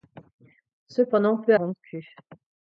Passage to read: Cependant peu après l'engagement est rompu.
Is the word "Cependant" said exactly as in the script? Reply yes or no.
yes